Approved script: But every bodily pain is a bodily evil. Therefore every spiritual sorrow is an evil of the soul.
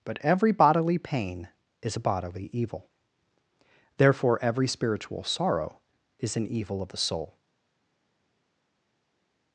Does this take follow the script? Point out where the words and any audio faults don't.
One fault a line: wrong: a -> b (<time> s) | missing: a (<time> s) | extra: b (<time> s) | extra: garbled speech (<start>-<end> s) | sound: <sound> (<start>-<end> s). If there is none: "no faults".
no faults